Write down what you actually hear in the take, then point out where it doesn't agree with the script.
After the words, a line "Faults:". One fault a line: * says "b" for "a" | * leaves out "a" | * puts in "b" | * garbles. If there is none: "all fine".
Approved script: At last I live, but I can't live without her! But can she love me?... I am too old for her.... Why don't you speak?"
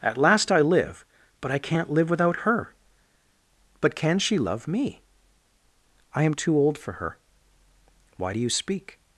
At last I live, but I can't live without her! But can she love me?... I am too old for her.... Why do you speak?"
Faults:
* says "do" for "don't"